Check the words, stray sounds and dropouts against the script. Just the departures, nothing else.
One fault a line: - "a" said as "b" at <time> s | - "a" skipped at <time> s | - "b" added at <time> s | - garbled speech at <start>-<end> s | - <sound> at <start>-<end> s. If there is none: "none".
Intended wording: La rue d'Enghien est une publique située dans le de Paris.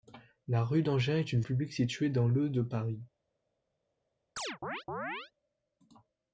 - chirp at 4.4-5.3 s